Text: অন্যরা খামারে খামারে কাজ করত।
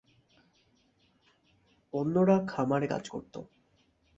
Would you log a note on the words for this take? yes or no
yes